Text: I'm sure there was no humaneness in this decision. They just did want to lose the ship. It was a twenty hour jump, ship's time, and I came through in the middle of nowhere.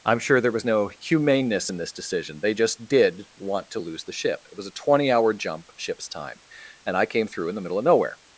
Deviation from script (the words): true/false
false